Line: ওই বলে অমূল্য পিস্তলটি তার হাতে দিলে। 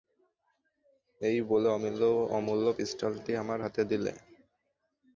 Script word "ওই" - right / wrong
wrong